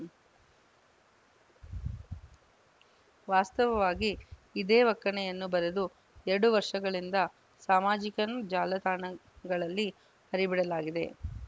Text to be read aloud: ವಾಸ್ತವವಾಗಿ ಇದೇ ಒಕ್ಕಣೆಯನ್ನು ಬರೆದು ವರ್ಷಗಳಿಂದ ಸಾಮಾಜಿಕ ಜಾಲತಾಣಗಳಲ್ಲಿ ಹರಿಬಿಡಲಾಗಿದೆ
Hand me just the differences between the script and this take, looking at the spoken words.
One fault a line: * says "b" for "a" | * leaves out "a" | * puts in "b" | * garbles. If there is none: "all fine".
* puts in "ಎರಡು"